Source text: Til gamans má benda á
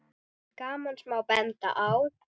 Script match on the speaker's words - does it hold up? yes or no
yes